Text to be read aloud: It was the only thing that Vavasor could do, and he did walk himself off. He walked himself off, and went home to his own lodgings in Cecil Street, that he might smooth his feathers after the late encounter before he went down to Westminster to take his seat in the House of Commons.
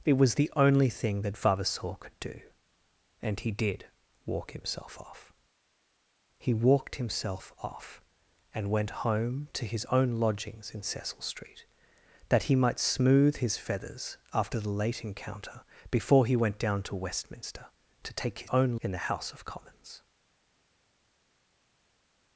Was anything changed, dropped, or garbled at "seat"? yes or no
yes